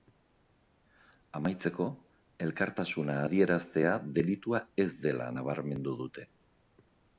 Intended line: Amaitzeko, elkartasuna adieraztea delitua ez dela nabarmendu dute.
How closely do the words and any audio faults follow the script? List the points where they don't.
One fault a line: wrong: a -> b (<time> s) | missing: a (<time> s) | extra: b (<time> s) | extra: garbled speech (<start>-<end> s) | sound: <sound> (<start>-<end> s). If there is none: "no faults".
no faults